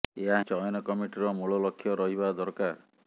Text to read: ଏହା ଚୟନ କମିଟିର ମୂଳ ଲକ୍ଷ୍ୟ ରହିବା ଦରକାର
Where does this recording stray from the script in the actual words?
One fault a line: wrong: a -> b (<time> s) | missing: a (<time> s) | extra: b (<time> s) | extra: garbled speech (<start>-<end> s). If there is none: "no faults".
no faults